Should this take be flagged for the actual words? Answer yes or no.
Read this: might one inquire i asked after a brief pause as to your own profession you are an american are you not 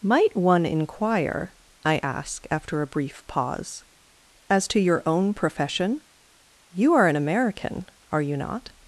yes